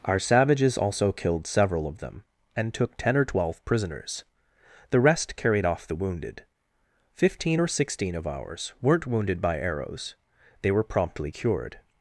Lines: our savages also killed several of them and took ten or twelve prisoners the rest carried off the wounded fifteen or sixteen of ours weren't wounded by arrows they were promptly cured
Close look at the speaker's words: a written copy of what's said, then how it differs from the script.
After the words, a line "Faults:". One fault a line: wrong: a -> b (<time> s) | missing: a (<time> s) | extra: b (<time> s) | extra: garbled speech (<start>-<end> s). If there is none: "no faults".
our savages also killed several of them and took ten or twelve prisoners the rest carried off the wounded fifteen or sixteen of ours weren't wounded by arrows they were promptly cured
Faults:
no faults